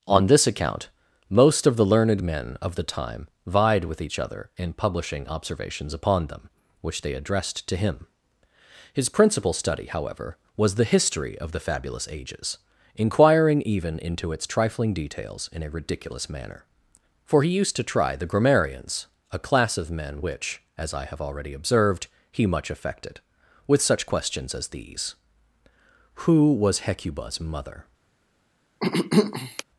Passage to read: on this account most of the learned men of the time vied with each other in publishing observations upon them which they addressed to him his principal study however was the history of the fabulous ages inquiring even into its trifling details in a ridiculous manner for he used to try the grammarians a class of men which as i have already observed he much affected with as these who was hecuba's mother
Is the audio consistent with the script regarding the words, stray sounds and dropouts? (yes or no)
no